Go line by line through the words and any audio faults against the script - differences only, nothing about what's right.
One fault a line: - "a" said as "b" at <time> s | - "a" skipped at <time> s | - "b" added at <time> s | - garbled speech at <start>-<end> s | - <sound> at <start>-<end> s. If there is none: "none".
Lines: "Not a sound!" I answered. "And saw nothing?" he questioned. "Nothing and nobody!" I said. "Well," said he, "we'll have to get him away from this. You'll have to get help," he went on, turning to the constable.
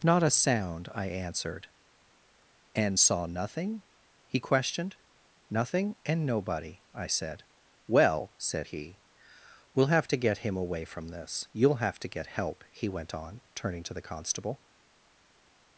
none